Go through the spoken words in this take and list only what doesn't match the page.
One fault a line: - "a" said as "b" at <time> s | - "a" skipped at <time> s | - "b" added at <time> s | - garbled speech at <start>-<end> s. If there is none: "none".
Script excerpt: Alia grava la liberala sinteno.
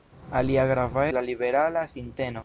none